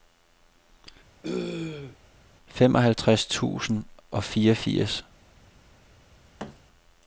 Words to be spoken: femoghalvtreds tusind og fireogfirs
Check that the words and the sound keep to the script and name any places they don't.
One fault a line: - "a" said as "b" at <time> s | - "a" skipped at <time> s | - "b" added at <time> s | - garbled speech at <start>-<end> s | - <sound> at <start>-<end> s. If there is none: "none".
- throat clearing at 1.2-2.0 s
- thud at 6.4-6.6 s